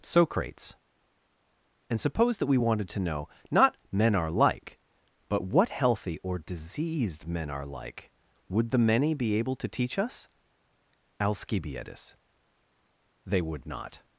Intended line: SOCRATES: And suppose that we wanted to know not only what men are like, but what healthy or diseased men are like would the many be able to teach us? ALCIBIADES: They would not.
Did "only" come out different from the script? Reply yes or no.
yes